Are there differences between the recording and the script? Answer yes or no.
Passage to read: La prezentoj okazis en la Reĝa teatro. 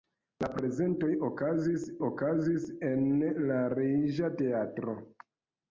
yes